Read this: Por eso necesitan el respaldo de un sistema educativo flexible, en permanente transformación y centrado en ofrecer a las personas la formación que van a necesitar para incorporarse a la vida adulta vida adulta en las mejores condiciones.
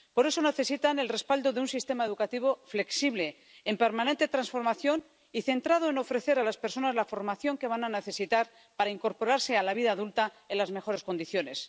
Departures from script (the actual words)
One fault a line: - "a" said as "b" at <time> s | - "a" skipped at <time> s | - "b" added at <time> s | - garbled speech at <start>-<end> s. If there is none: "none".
- "vida adulta" skipped at 10.3 s